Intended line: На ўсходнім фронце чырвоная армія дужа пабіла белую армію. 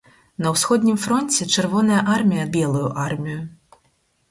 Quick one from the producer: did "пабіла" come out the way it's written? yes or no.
no